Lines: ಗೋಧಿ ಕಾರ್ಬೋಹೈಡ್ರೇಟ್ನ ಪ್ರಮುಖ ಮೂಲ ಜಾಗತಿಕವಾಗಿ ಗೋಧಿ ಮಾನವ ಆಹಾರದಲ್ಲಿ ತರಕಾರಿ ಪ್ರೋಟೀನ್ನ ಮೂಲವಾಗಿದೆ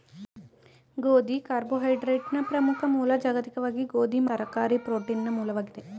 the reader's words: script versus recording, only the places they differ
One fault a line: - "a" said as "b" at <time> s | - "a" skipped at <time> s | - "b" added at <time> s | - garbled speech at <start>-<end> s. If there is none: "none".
- "ಮಾನವ ಆಹಾರದಲ್ಲಿ" skipped at 4.2 s